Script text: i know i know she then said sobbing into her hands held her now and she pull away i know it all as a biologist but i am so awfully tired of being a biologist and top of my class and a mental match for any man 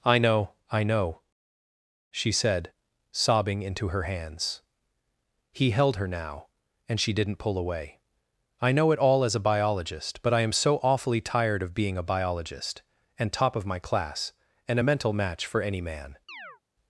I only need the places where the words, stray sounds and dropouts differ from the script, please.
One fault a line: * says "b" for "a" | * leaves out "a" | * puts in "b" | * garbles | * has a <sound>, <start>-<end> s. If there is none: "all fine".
* leaves out "then"
* puts in "he"
* puts in "didn't"
* has a chirp, 16.3-16.6 s